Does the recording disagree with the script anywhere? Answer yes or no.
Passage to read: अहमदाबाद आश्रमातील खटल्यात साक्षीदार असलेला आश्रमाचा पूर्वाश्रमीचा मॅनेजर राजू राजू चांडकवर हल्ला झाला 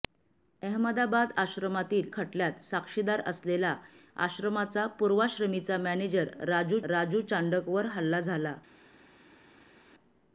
no